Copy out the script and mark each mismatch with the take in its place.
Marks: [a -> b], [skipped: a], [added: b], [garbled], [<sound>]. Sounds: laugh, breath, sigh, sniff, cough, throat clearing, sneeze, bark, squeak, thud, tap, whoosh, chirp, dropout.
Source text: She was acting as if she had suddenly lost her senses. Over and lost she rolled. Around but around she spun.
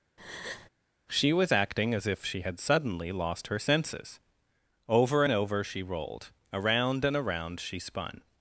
[breath] She was acting as if she had suddenly lost her senses. Over and [lost -> over] she rolled. Around [but -> and] around she spun.